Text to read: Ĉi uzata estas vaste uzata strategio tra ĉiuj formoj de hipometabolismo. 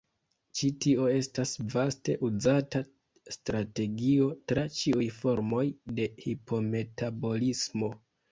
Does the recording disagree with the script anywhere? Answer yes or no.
yes